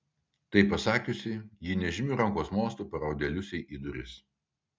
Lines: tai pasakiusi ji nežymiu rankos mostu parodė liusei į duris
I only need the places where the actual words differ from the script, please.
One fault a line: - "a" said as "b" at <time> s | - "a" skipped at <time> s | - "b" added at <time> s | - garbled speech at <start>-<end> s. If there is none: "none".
none